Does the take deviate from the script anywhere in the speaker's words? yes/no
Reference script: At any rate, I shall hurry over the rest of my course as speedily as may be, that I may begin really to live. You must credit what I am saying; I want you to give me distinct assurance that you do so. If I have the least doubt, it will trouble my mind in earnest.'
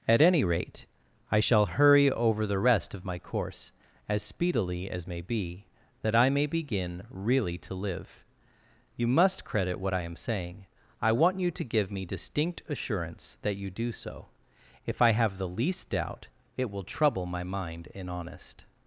yes